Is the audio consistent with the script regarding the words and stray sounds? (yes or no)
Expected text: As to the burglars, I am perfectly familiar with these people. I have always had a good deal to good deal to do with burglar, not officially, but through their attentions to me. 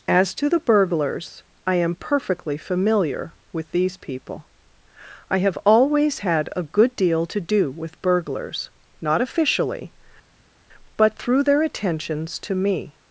no